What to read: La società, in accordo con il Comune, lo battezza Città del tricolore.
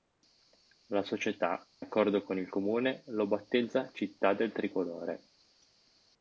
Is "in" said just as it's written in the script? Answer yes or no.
no